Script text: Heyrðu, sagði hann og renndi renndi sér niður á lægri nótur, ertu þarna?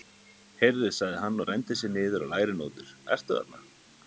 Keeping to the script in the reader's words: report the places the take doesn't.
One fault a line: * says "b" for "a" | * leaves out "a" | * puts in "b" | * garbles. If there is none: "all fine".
* leaves out "renndi"